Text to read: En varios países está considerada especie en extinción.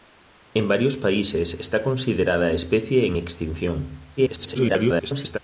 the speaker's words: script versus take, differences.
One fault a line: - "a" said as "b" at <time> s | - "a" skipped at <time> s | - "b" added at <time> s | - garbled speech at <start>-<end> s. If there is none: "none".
- garbled speech at 4.2-5.4 s